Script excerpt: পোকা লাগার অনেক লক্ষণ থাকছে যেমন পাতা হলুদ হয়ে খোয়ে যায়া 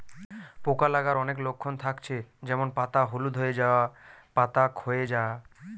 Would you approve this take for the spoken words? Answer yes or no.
no